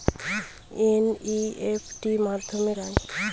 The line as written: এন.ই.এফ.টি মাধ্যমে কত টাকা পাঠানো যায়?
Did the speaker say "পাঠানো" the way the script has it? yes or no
no